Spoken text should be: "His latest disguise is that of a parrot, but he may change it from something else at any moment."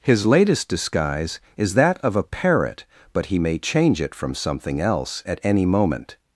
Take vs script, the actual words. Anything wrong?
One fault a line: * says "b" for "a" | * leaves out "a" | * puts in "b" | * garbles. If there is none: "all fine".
all fine